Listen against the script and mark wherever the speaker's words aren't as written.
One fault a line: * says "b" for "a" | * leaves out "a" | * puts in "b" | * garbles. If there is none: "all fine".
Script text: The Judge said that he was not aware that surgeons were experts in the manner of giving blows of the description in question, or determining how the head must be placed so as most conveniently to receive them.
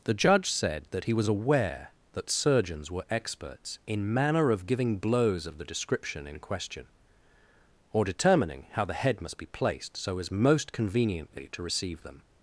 * leaves out "not"
* leaves out "the"